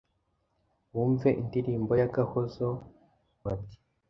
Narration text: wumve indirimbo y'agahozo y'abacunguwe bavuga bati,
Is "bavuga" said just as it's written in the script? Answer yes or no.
no